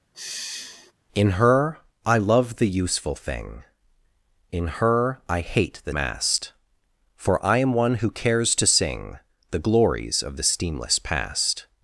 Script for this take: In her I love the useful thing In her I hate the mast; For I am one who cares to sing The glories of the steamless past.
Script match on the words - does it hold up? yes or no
yes